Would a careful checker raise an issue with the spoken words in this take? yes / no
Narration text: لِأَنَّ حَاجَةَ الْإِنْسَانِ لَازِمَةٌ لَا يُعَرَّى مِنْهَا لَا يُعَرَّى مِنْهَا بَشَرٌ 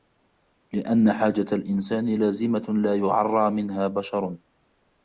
yes